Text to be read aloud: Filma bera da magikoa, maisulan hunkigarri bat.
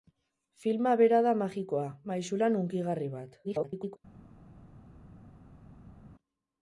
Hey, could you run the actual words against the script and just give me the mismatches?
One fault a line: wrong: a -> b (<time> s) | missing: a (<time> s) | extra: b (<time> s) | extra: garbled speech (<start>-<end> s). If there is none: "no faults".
extra: garbled speech (3.4-4.0 s)